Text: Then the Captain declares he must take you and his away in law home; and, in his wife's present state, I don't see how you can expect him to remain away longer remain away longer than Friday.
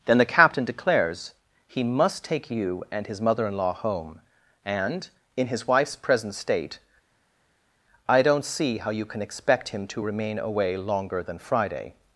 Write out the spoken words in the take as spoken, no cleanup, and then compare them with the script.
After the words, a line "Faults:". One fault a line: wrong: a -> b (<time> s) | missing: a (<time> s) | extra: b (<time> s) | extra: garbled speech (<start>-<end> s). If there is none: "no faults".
Then the Captain declares he must take you and his mother in law home; and, in his wife's present state, I don't see how you can expect him to remain away longer than Friday.
Faults:
wrong: away -> mother (3.2 s)
missing: remain away longer (11.2 s)